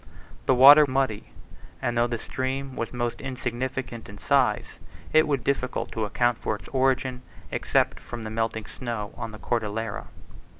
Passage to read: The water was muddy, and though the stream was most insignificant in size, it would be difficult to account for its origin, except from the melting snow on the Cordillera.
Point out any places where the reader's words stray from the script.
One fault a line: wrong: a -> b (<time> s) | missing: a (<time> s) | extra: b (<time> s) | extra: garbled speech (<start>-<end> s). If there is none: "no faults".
missing: was (0.8 s)
missing: be (5.4 s)